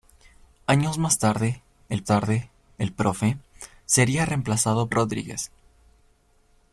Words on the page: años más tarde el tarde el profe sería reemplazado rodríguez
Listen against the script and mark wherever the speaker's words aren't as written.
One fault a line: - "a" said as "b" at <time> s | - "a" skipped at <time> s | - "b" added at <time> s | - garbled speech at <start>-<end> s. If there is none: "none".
none